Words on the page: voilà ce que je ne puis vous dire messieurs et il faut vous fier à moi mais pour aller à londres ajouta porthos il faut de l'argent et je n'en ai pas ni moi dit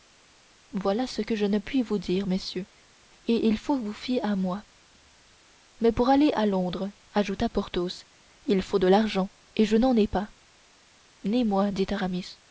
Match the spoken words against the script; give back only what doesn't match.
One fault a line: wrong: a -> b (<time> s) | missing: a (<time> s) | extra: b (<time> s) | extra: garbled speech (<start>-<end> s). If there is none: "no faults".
no faults